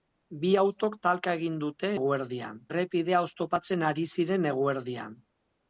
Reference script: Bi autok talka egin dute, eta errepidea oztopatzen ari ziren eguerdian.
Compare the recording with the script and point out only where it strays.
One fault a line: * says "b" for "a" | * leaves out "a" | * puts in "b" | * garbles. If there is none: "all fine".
* says "eguerdian" for "eta"